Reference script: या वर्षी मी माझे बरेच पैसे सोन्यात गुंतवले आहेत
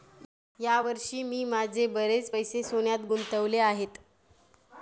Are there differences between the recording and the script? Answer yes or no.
no